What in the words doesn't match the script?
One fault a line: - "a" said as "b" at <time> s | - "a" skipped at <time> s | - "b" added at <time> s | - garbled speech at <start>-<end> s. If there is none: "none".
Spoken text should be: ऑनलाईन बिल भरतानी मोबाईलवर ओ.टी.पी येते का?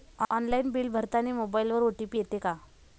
none